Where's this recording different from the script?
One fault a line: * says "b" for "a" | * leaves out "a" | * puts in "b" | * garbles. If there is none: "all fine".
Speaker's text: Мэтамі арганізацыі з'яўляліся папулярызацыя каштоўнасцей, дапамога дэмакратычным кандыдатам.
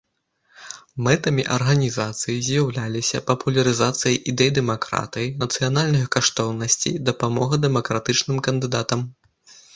* puts in "ідэй дэмакратыі нацыянальных"